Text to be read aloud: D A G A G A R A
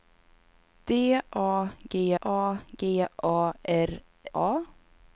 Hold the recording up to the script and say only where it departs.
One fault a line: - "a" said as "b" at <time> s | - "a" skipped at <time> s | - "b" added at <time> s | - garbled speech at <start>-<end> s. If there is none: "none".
none